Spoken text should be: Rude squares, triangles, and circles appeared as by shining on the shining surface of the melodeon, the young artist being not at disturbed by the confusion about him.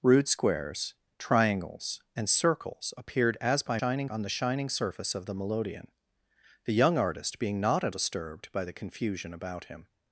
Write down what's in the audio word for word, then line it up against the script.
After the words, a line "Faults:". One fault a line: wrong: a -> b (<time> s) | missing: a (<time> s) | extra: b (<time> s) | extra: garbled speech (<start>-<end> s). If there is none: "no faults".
Rude squares, triangles, and circles appeared as by shining on the shining surface of the melodeon, the young artist being not at disturbed by the confusion about him.
Faults:
no faults